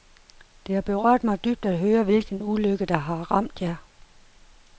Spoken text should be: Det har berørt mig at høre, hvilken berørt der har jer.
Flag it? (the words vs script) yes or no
yes